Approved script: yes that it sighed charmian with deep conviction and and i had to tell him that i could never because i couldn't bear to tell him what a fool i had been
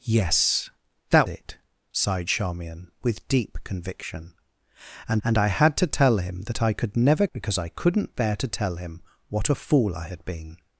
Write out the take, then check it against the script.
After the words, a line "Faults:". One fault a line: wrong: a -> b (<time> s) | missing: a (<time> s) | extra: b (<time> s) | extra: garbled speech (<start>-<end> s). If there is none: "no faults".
yes that it sighed charmian with deep conviction and and i had to tell him that i could never because i couldn't bear to tell him what a fool i had been
Faults:
no faults